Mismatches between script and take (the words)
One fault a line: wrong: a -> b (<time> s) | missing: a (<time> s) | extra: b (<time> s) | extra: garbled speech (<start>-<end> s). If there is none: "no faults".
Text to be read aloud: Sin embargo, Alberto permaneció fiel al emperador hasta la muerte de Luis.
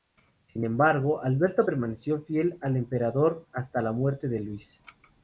no faults